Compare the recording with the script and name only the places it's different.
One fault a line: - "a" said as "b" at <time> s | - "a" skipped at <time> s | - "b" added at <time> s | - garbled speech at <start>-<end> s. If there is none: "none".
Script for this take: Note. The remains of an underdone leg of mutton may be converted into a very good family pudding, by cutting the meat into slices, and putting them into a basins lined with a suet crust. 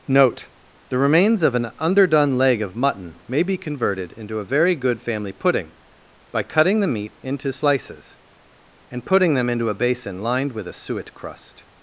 - "basins" said as "basin" at 9.7 s